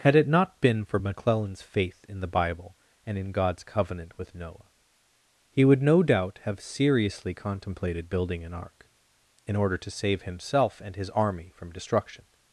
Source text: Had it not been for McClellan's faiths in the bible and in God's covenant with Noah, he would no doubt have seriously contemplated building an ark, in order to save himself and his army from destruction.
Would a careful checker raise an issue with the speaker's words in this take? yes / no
yes